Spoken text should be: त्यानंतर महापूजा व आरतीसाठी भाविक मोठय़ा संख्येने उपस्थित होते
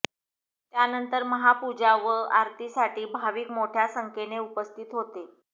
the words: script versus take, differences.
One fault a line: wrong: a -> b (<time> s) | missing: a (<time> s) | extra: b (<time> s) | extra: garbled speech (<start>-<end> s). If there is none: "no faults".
no faults